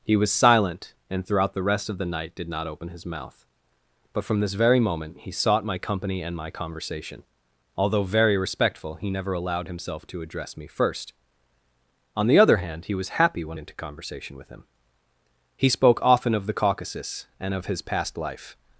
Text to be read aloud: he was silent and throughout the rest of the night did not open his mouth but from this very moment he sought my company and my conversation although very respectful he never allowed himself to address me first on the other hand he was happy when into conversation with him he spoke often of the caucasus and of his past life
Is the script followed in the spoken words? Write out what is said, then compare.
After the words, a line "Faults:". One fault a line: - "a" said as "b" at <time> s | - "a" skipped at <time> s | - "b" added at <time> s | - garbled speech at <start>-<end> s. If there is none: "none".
he was silent and throughout the rest of the night did not open his mouth but from this very moment he sought my company and my conversation although very respectful he never allowed himself to address me first on the other hand he was happy when into conversation with him he spoke often of the caucasus and of his past life
Faults:
none